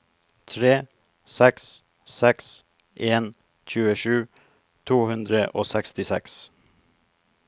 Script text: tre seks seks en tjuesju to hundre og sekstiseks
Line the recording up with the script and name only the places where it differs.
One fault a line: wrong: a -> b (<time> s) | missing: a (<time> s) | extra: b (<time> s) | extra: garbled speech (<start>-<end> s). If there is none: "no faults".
no faults